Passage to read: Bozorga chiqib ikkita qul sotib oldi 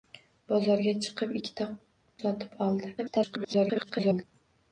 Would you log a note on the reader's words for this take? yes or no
yes